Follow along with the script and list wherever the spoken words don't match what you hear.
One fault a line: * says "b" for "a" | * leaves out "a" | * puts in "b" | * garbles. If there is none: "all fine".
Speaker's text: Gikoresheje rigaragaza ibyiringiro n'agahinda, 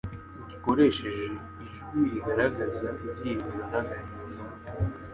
* puts in "ijwi"